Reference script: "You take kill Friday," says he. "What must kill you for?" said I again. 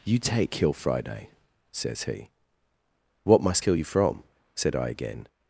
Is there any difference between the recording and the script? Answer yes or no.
yes